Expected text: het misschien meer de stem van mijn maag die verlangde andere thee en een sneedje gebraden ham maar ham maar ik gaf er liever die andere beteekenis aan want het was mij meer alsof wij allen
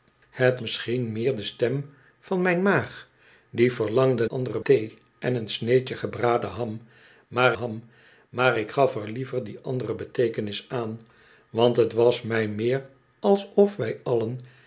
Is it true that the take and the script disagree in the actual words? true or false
false